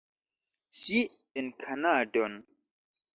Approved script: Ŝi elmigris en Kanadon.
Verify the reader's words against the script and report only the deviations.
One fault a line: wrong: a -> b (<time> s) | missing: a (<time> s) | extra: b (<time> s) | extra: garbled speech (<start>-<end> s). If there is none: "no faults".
missing: elmigris (1.0 s)